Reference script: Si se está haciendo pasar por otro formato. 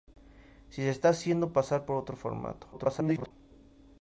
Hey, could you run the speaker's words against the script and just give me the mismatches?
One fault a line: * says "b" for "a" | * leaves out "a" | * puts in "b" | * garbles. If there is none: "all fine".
* garbles